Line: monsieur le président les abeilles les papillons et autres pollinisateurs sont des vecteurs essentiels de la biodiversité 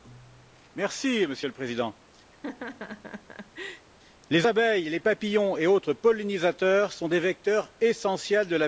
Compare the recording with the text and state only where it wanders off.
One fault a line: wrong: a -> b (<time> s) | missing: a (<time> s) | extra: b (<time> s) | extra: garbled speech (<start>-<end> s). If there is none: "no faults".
no faults